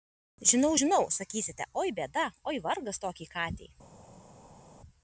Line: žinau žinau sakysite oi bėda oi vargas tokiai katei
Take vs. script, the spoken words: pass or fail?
pass